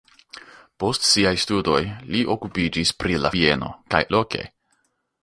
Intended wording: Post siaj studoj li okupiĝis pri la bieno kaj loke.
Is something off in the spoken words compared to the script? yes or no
no